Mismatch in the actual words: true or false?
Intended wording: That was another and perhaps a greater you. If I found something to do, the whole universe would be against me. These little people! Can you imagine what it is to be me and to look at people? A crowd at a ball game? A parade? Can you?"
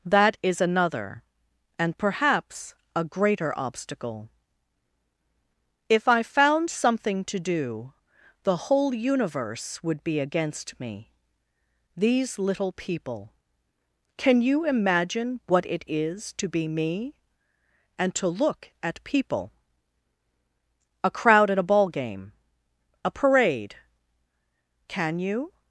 true